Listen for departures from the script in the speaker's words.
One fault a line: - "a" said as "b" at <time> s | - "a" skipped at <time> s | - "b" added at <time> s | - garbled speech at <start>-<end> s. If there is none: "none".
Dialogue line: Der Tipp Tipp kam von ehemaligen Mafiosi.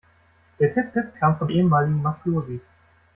none